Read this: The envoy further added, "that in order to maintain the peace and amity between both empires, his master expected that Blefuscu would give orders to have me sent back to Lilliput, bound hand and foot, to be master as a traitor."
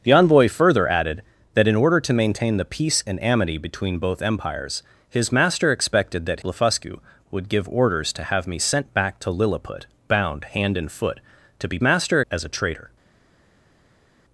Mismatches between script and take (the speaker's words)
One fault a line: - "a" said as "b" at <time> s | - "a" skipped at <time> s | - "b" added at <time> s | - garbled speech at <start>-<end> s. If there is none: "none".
none